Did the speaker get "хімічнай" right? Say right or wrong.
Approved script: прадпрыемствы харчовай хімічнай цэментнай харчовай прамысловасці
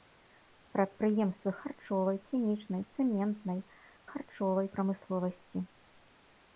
right